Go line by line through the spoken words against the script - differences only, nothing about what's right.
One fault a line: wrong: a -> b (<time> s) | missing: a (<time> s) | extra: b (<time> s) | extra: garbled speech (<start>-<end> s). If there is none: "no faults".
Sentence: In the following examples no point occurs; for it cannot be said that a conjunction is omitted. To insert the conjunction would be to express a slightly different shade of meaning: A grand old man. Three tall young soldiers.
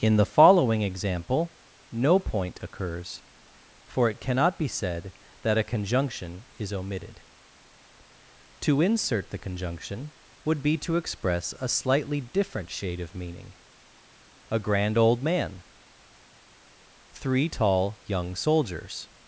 wrong: examples -> example (0.8 s)